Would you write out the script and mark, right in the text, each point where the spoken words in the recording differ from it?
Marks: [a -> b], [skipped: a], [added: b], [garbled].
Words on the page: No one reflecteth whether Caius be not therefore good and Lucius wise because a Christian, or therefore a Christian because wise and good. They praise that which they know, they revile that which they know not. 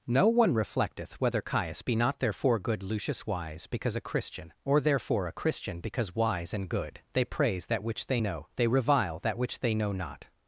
No one reflecteth whether Caius be not therefore good [skipped: and] Lucius wise because a Christian, or therefore a Christian because wise and good. They praise that which they know, they revile that which they know not.